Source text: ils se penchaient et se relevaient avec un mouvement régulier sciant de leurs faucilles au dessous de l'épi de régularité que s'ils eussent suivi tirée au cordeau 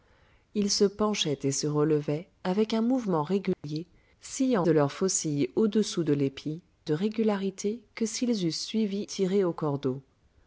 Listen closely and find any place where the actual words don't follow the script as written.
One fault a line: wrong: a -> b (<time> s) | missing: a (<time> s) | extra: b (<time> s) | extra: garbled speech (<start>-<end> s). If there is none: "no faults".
no faults